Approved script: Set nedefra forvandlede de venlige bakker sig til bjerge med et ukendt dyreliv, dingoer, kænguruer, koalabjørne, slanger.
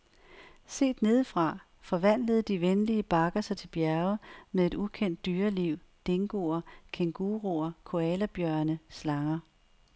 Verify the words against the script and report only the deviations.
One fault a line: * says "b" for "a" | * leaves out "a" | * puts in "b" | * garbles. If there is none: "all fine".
all fine